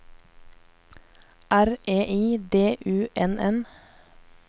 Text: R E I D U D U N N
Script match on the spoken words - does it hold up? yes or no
no